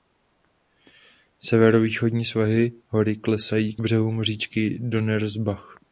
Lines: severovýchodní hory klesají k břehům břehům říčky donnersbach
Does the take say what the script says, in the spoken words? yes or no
no